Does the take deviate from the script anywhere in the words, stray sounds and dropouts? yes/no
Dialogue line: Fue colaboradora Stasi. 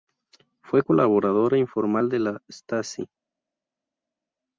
yes